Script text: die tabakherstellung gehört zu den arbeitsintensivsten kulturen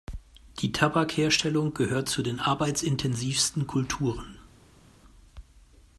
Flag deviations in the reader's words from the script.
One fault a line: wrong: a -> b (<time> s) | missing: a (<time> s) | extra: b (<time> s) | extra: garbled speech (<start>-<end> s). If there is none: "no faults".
no faults